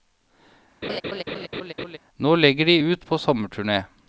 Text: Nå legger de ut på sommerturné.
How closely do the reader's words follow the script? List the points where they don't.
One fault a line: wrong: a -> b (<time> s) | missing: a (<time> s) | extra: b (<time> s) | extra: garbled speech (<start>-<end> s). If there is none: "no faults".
no faults